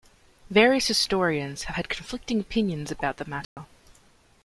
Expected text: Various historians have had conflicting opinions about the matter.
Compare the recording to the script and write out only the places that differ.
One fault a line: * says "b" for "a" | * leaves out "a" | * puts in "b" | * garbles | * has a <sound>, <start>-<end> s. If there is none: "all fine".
* has a dropout, 3.4-3.6 s